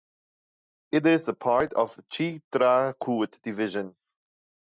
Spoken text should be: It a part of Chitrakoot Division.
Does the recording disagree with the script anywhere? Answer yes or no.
yes